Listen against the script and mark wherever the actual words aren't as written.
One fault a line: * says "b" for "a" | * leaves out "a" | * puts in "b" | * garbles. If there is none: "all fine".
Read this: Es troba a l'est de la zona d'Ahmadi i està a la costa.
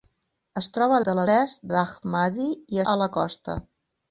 * leaves out "l'est"
* says "l'est" for "zona"
* leaves out "està"